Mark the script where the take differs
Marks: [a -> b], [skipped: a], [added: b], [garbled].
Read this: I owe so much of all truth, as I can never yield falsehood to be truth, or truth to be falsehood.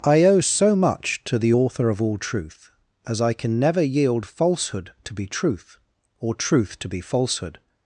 I owe so much [added: to the author] of all truth, as I can never yield falsehood to be truth, or truth to be falsehood.